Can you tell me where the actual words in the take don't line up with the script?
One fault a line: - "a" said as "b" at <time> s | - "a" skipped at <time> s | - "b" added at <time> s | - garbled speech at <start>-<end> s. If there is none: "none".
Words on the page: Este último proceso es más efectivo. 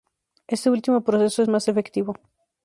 none